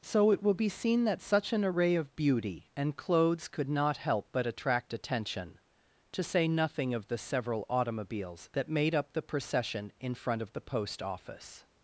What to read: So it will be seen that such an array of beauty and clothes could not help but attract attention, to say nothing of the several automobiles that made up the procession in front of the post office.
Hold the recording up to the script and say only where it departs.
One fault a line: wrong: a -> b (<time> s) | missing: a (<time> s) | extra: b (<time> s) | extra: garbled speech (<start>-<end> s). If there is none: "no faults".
no faults